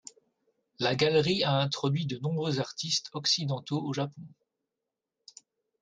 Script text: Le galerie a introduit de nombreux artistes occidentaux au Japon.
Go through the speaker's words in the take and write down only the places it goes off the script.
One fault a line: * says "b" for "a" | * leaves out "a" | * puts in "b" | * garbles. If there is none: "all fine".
* says "La" for "Le"